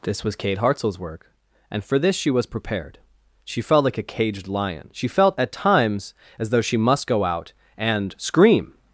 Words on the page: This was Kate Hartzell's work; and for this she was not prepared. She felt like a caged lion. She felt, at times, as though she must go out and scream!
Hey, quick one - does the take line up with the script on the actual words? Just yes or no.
no